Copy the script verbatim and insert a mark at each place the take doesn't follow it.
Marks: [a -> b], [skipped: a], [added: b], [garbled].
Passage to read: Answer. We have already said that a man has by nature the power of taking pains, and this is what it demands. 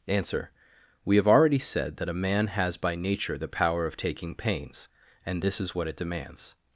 Answer. We have already said that a man has by nature the power of taking pains, and this is what it demands.